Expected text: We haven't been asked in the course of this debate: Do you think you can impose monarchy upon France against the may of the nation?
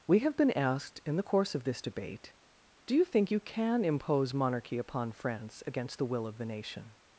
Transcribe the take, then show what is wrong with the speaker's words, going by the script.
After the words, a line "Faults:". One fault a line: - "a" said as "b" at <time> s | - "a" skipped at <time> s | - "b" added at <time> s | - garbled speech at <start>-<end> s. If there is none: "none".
We have been asked in the course of this debate: Do you think you can impose monarchy upon France against the will of the nation?
Faults:
- "haven't" said as "have" at 0.2 s
- "may" said as "will" at 6.0 s